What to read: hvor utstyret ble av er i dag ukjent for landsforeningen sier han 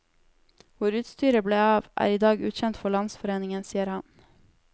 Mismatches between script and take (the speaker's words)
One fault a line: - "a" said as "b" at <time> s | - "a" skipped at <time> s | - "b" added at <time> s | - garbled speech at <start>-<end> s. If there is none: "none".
none